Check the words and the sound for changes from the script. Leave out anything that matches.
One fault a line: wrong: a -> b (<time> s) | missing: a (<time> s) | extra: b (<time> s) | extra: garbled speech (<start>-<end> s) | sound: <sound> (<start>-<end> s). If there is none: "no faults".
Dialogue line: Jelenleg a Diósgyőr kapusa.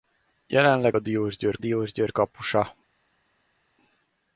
extra: Diósgyőr (1.6 s)